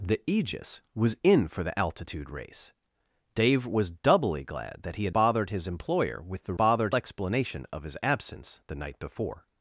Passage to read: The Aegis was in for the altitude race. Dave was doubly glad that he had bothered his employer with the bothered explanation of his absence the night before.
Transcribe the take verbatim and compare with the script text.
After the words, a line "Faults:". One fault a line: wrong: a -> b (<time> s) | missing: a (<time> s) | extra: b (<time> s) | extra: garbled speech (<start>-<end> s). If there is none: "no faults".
The Aegis was in for the altitude race. Dave was doubly glad that he had bothered his employer with the bothered explanation of his absence the night before.
Faults:
no faults